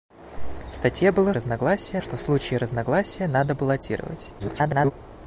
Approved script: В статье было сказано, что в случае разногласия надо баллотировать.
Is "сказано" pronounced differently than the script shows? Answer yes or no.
yes